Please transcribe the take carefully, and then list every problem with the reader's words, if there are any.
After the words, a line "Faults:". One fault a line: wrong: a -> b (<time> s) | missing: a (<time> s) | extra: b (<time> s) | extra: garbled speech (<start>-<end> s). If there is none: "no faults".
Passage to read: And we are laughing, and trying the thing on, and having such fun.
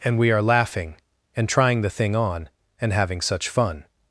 And we are laughing, and trying the thing on, and having such fun.
Faults:
no faults